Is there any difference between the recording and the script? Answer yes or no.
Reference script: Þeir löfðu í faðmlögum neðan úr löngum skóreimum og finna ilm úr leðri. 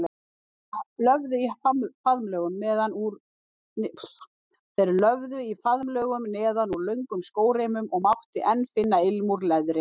yes